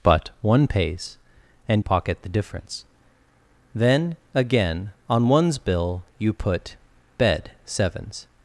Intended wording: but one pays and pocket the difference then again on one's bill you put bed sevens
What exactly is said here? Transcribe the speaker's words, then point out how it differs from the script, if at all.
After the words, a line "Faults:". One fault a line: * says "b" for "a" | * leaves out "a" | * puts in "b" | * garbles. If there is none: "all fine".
but one pays and pocket the difference then again on one's bill you put bed sevens
Faults:
all fine